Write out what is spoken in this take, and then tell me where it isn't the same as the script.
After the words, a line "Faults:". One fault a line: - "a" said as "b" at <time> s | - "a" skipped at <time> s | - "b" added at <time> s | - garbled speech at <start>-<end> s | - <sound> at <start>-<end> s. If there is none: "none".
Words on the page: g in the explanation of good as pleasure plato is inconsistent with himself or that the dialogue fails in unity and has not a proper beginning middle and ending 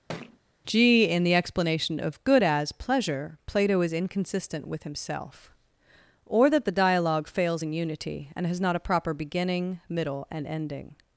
g in the explanation of good as pleasure plato is inconsistent with himself or that the dialogue fails in unity and has not a proper beginning middle and ending
Faults:
- thud at 0.1-0.4 s